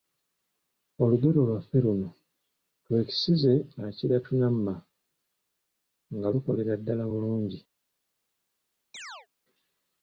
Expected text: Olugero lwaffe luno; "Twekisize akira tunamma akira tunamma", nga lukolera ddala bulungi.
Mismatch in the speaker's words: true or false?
true